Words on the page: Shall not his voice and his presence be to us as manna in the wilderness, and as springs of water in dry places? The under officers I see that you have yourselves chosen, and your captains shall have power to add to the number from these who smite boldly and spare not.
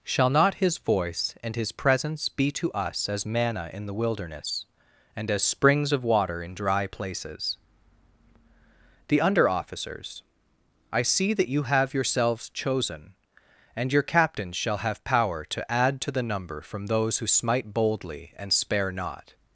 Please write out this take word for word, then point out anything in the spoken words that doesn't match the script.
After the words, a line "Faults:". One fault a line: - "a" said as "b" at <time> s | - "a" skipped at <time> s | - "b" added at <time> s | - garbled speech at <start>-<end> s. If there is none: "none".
Shall not his voice and his presence be to us as manna in the wilderness, and as springs of water in dry places? The under officers I see that you have yourselves chosen, and your captains shall have power to add to the number from those who smite boldly and spare not.
Faults:
- "these" said as "those" at 16.9 s